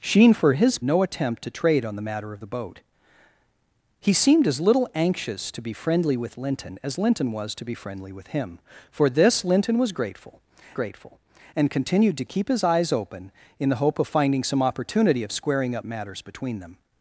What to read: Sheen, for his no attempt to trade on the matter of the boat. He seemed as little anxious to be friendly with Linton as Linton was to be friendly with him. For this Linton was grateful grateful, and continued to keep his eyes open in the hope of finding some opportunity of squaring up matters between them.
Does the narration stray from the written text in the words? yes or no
no